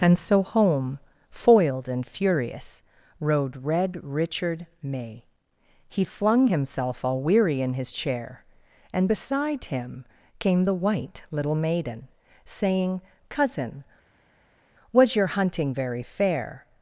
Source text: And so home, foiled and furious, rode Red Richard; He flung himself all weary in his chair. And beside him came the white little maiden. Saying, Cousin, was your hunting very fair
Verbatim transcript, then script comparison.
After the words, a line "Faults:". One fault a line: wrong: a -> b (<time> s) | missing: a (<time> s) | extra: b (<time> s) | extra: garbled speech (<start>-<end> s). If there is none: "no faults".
And so home, foiled and furious, rode Red Richard; may He flung himself all weary in his chair. And beside him came the white little maiden. Saying, Cousin, was your hunting very fair
Faults:
extra: may (4.8 s)